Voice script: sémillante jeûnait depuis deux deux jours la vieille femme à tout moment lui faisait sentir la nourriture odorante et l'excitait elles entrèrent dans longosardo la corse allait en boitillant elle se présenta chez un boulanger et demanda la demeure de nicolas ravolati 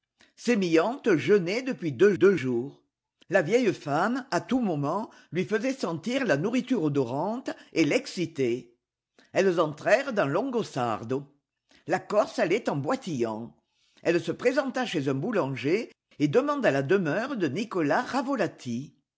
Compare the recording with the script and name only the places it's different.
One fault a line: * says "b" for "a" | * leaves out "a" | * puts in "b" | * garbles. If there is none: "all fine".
all fine